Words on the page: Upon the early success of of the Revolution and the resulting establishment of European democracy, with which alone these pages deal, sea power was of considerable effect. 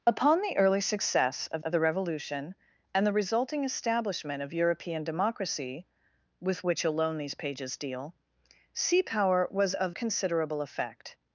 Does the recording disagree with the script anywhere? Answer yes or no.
no